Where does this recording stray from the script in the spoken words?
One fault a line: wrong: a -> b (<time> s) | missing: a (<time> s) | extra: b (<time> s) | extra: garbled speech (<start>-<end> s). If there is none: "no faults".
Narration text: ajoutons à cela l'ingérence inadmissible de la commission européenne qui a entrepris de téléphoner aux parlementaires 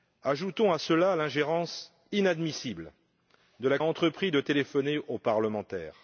missing: commission européenne qui (3.8 s)